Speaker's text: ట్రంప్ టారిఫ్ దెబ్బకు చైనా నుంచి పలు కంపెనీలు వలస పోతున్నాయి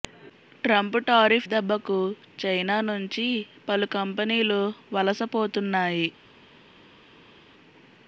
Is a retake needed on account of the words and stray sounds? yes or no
no